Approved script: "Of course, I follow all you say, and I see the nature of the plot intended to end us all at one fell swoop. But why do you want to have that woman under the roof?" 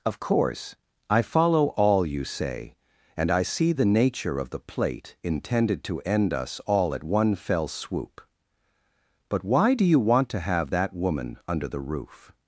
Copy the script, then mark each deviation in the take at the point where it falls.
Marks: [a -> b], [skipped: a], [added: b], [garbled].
"Of course, I follow all you say, and I see the nature of the [plot -> plate] intended to end us all at one fell swoop. But why do you want to have that woman under the roof?"